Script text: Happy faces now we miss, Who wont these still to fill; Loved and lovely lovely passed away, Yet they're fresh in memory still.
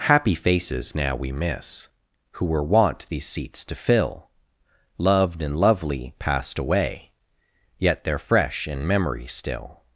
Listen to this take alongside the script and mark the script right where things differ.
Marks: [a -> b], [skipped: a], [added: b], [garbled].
Happy faces now we miss, Who [added: were] wont these [still -> seats] to fill; Loved and lovely [skipped: lovely] passed away, Yet they're fresh in memory still.